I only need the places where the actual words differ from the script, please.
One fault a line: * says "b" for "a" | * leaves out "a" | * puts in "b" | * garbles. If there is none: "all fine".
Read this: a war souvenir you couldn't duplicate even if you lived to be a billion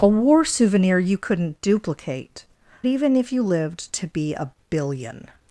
all fine